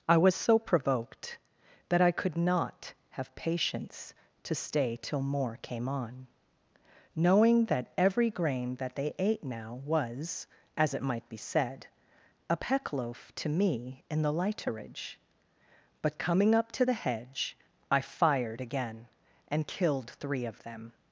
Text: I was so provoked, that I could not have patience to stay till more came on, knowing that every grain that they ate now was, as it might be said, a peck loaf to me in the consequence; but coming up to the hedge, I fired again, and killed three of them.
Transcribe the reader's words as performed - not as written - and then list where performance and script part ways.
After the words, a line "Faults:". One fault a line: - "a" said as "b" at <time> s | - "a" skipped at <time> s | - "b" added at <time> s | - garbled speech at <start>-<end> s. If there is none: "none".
I was so provoked, that I could not have patience to stay till more came on, knowing that every grain that they ate now was, as it might be said, a peck loaf to me in the lighterage; but coming up to the hedge, I fired again, and killed three of them.
Faults:
- "consequence" said as "lighterage" at 14.3 s